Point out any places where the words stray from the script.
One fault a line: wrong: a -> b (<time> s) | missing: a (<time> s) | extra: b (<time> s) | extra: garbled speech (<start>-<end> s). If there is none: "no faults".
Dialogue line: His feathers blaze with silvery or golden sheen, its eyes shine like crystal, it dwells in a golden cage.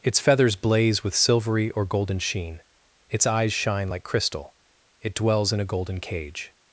wrong: His -> Its (0.0 s)